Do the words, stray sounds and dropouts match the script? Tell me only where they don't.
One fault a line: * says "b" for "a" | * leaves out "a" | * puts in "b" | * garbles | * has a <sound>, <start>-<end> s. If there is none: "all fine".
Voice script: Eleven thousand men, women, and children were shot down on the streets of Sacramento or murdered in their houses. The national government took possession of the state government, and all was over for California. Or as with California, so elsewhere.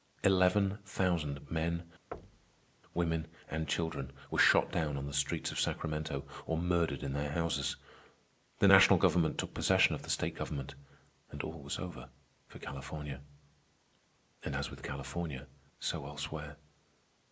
* has a thud, 2.1-2.7 s
* says "And" for "Or"